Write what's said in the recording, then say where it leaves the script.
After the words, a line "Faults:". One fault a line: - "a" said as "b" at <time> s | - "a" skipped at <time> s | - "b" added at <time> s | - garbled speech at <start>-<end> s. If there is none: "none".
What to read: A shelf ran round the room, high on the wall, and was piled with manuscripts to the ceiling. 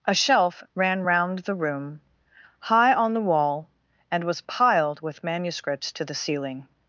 A shelf ran round the room, high on the wall, and was piled with manuscripts to the ceiling.
Faults:
none